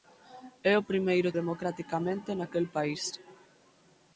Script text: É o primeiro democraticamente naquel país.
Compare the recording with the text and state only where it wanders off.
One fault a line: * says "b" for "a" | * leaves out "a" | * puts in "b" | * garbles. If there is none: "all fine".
all fine